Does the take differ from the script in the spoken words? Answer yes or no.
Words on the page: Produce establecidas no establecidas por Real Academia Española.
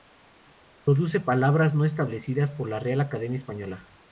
yes